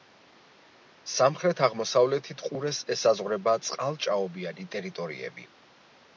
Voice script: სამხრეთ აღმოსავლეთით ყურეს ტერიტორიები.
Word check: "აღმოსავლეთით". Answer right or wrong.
right